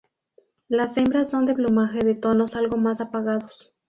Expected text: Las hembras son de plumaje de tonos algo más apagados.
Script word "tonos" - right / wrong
right